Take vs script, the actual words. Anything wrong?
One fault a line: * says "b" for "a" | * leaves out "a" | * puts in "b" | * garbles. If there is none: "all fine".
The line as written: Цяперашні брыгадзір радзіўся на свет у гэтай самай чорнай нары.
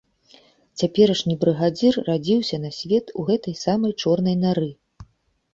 all fine